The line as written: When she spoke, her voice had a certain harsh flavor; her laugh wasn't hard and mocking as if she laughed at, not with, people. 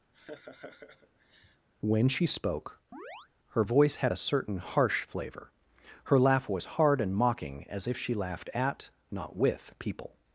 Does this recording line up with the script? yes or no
no